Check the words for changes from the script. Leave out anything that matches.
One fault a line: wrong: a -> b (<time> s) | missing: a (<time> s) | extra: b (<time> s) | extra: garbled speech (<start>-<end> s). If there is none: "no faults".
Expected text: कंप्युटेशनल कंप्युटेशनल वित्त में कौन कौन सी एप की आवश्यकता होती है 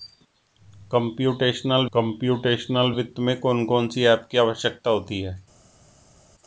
no faults